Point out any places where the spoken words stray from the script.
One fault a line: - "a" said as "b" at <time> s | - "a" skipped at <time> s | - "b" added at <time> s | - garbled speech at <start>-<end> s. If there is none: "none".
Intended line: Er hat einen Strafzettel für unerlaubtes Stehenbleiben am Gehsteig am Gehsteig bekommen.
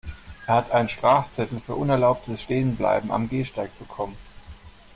- "am Gehsteig" skipped at 3.8 s